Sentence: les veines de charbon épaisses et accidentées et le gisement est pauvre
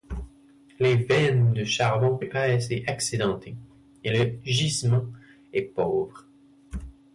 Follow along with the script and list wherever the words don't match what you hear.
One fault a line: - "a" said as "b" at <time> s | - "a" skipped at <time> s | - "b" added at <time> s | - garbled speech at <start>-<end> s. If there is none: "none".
none